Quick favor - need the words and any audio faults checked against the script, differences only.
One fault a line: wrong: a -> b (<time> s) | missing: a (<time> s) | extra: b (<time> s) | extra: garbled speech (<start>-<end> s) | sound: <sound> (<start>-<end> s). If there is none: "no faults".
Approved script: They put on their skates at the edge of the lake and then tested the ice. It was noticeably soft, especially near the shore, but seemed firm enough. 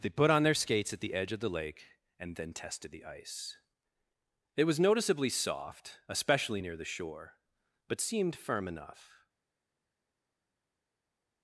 no faults